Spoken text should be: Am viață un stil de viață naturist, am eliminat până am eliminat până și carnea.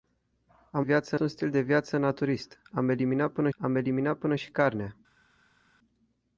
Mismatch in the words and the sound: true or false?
false